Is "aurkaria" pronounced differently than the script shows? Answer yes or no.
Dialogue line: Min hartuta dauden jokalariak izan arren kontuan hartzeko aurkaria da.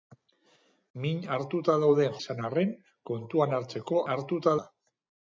yes